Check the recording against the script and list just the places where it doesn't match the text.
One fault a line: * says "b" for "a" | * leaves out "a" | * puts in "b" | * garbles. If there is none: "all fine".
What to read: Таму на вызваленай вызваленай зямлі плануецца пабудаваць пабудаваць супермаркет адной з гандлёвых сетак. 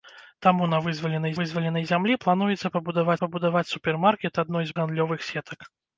all fine